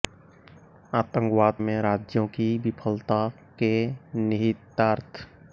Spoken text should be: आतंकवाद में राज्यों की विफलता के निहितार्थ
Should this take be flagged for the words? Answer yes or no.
no